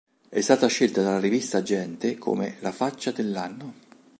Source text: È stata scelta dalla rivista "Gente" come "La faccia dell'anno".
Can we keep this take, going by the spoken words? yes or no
yes